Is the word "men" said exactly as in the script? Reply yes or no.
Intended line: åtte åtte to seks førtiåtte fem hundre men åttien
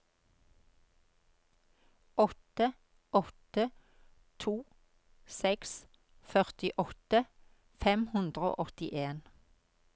no